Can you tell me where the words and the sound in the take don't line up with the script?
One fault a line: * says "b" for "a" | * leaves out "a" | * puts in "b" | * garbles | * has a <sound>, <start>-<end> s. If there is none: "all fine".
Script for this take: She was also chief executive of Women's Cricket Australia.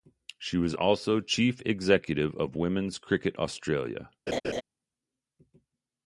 * has a laugh, 4.3-4.6 s